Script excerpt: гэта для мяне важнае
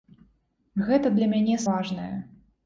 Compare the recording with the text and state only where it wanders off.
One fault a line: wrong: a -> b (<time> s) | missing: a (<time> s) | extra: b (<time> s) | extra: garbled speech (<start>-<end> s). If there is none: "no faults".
no faults